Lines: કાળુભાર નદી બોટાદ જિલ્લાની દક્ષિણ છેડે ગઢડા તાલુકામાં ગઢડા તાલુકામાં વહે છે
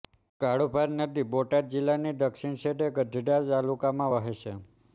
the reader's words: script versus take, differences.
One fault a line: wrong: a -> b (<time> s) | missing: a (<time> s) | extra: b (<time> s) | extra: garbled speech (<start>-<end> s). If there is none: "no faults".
missing: ગઢડા તાલુકામાં (4.1 s)